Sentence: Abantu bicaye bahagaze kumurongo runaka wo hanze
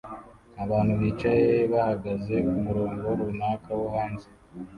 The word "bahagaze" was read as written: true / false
true